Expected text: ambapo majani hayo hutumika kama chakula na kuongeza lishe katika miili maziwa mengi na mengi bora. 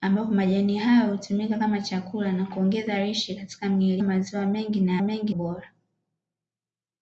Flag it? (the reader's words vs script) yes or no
no